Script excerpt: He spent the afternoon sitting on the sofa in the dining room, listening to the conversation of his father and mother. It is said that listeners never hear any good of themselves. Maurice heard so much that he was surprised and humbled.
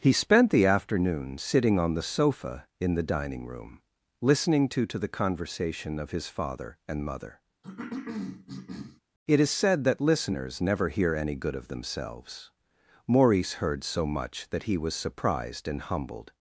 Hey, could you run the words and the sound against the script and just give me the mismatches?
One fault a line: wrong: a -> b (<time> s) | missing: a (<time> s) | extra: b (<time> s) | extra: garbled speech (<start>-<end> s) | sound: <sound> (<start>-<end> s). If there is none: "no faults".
extra: to (4.9 s)
sound: cough (7.6-9.0 s)